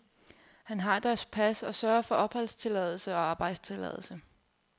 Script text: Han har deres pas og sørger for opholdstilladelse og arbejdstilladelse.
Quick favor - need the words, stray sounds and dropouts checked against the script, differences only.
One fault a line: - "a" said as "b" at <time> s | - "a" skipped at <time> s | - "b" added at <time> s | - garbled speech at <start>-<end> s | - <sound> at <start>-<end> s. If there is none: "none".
none